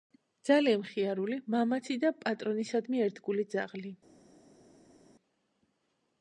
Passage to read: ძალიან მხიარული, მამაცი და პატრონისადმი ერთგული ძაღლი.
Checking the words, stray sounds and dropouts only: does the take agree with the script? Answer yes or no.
yes